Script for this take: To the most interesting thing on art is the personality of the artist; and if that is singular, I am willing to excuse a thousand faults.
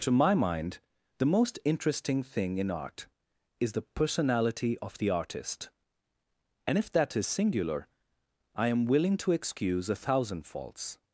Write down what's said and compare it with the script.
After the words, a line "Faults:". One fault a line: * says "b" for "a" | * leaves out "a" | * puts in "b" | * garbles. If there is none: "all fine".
To my mind the most interesting thing in art is the personality of the artist; and if that is singular, I am willing to excuse a thousand faults.
Faults:
* puts in "my mind"
* says "in" for "on"